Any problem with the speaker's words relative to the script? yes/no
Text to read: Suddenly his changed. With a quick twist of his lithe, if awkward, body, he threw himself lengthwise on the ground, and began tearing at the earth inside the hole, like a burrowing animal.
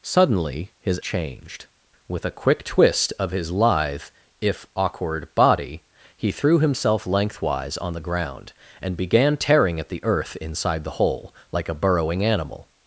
no